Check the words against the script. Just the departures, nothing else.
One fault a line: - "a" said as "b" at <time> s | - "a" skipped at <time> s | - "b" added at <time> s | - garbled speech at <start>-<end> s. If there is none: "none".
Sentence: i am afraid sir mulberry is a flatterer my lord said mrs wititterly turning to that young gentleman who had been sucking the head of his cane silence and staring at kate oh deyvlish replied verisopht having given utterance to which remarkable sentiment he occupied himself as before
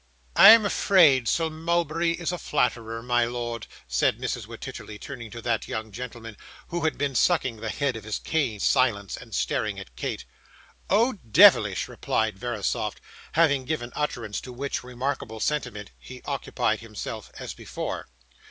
none